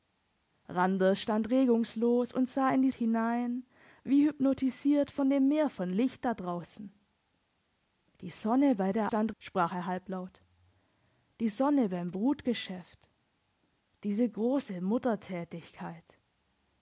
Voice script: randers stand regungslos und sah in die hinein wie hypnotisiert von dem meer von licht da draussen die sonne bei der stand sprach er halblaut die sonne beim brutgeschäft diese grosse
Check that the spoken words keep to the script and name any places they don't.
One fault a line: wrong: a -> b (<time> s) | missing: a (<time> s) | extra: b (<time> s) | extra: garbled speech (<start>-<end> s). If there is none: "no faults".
no faults